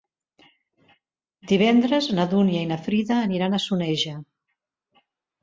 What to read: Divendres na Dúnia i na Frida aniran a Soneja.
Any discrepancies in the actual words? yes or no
no